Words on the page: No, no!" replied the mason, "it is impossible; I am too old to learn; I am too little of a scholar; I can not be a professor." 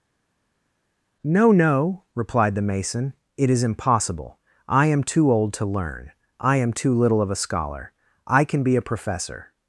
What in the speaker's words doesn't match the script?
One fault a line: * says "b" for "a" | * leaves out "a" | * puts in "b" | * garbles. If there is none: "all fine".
* leaves out "not"